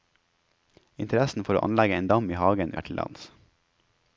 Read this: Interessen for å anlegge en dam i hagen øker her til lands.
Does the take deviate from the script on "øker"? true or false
true